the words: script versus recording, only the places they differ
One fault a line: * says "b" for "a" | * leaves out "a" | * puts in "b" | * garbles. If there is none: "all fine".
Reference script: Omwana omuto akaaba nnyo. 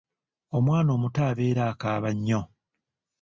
* puts in "abeera"